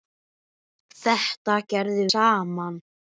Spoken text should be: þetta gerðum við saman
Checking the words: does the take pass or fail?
fail